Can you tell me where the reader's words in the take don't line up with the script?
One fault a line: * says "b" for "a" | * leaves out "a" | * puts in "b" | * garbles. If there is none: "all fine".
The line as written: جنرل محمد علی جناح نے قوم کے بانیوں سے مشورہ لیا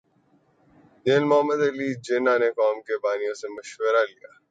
all fine